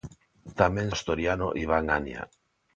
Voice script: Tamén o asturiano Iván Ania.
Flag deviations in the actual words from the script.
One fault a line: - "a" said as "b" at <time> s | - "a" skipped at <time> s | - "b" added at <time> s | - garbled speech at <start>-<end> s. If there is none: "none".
none